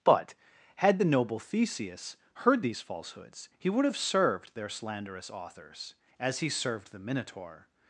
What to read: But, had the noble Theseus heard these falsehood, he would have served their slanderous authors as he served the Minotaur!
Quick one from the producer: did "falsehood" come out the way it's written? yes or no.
no